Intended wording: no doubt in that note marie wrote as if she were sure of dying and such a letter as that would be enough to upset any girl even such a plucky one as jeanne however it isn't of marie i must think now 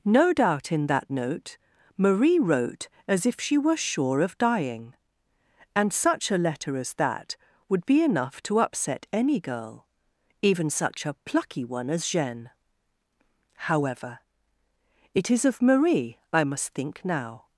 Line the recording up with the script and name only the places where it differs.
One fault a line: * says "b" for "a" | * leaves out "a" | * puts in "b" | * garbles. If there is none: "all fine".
* says "is" for "isn't"